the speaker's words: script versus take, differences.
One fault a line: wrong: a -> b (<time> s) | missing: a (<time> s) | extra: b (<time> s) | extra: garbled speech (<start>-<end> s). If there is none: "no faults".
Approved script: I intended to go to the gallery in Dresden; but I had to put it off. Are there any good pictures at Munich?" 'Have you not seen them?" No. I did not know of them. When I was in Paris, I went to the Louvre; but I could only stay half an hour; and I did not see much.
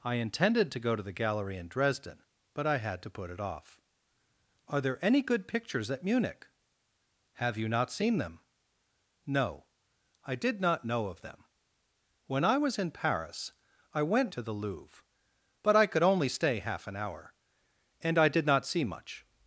no faults